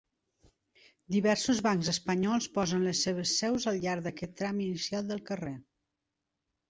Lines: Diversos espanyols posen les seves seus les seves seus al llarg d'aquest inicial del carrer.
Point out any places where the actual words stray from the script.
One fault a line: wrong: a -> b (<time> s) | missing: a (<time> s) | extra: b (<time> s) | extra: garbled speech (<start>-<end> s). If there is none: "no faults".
extra: bancs (1.7 s)
missing: les seves seus (3.7 s)
extra: tram (4.4 s)